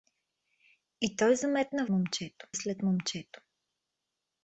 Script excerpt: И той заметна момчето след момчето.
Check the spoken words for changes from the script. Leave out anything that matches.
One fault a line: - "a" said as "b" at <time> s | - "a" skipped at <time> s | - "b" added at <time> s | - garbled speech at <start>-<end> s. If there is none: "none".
none